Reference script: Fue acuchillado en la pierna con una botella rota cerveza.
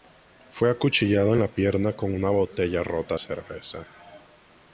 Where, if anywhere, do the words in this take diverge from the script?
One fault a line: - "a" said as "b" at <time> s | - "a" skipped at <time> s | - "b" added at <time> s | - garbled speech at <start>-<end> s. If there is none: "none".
none